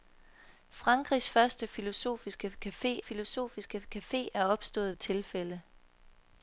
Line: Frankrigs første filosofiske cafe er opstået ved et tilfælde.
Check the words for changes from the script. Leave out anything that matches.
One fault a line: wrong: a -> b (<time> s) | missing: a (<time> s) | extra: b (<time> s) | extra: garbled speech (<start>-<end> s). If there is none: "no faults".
extra: filosofiske cafe (3.0 s)
missing: ved (5.0 s)